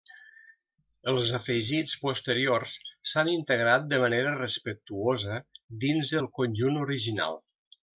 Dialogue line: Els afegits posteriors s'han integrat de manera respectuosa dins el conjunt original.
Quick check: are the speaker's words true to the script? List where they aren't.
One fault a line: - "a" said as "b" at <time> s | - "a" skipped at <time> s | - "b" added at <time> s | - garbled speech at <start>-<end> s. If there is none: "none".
none